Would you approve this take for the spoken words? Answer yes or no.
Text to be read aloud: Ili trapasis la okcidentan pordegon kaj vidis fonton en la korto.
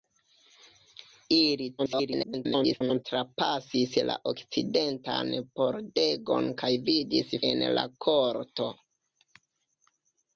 no